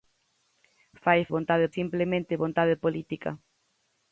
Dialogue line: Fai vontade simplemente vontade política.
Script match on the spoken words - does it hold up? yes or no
yes